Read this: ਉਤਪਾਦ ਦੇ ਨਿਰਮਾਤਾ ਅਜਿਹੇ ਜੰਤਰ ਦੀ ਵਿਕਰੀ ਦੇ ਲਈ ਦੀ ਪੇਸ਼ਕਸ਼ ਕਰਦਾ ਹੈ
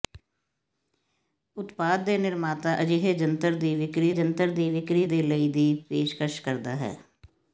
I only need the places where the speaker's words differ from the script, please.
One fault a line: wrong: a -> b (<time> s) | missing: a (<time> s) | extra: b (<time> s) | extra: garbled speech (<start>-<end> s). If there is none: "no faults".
extra: ਜੰਤਰ ਦੀ ਵਿਕਰੀ (4.1 s)